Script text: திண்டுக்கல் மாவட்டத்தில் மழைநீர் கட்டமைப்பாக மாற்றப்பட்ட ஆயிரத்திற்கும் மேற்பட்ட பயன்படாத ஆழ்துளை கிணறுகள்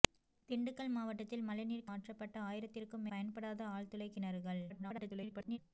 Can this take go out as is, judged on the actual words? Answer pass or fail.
fail